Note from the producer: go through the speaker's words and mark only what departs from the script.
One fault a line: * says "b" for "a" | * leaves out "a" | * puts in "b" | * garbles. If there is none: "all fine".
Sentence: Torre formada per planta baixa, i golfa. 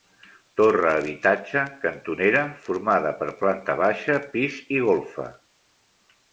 * puts in "habitatge cantonera"
* puts in "pis"